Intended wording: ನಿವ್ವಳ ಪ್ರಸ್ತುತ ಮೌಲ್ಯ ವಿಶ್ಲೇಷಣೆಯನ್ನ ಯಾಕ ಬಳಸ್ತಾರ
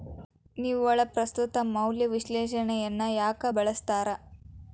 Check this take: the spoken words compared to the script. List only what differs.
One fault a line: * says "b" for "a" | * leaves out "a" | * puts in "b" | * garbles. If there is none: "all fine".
all fine